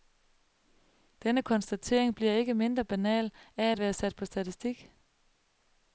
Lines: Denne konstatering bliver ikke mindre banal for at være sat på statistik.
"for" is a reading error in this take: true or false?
true